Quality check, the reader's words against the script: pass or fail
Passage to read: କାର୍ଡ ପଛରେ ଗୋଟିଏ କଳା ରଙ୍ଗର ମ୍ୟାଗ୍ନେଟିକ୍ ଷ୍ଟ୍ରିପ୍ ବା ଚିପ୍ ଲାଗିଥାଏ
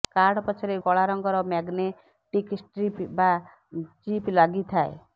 fail